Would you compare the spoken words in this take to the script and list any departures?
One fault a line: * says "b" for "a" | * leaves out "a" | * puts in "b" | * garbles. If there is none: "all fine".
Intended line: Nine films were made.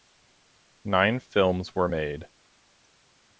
all fine